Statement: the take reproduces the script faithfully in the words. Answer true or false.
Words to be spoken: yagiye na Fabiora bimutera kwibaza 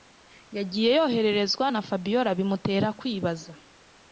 false